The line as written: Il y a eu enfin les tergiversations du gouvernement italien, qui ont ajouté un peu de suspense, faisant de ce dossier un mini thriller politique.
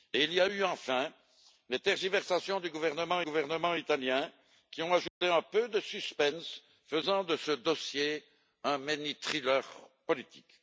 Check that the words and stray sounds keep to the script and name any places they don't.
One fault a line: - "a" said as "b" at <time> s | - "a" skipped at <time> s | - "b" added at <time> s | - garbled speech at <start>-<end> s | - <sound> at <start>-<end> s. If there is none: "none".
- "gouvernement" added at 3.2 s
- dropout at 5.1-5.2 s